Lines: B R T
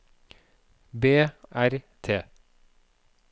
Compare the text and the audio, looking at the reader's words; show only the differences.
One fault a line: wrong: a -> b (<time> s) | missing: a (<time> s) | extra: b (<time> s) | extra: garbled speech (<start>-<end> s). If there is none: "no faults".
no faults